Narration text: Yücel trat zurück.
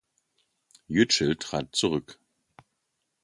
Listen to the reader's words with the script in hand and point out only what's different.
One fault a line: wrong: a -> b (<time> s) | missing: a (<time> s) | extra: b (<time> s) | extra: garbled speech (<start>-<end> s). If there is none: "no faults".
no faults